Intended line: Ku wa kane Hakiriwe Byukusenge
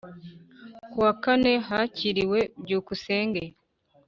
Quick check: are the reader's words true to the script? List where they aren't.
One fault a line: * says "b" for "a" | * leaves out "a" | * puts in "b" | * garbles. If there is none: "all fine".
all fine